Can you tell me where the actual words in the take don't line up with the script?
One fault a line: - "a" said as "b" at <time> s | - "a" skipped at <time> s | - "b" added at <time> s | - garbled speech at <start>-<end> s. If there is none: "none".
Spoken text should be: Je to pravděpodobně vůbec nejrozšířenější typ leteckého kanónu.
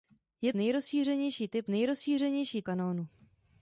- "to pravděpodobně vůbec" skipped at 0.5 s
- "leteckého" said as "nejrozšířenější" at 1.7 s